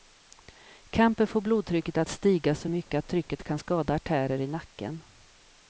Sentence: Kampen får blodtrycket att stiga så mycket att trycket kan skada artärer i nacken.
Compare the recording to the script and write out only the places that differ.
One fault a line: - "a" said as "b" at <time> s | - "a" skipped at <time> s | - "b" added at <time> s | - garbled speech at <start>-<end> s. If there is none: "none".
none